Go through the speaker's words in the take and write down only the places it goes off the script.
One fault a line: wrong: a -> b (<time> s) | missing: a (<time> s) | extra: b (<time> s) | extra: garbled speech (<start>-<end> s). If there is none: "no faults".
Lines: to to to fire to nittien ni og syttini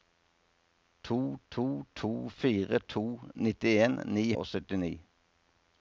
no faults